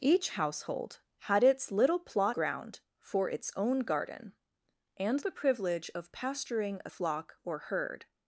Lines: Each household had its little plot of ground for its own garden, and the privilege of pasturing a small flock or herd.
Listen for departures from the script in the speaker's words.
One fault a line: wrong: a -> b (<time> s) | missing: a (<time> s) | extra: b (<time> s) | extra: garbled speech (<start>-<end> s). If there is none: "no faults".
missing: of (2.4 s)
missing: small (6.9 s)